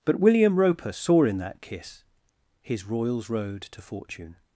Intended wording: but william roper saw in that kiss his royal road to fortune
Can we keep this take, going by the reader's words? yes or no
no